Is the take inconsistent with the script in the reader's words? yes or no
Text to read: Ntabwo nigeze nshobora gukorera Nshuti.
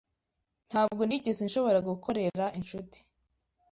no